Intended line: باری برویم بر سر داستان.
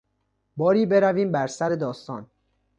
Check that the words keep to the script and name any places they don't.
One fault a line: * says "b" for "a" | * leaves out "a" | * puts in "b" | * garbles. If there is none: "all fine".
all fine